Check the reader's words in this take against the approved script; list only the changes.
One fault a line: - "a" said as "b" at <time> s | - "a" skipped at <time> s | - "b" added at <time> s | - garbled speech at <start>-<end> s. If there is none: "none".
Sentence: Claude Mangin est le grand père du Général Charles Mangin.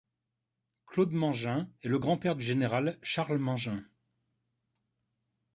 none